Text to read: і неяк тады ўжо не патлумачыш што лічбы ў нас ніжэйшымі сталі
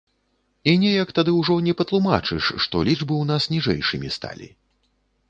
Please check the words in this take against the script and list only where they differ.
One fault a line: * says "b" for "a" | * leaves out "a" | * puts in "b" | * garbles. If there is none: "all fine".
all fine